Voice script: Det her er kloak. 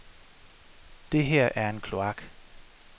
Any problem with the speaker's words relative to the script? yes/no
yes